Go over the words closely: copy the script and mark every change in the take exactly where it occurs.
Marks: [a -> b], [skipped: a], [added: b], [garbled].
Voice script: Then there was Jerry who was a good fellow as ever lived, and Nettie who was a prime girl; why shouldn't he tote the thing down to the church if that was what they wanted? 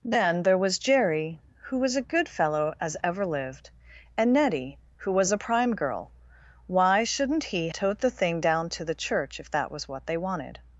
Then there was Jerry who was a good fellow as ever lived, and Nettie who was a prime girl; why shouldn't he tote the thing down to the church if that was what they wanted?